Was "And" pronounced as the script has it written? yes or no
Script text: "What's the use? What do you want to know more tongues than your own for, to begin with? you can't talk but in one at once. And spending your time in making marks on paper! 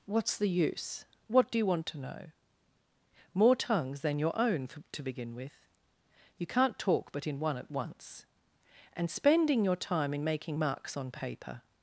yes